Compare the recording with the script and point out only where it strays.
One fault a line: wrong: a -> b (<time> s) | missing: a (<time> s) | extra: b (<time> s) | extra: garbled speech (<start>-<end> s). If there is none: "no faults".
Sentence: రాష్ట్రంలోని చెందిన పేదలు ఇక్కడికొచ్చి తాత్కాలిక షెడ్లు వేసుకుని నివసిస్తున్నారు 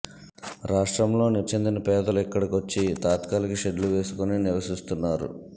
no faults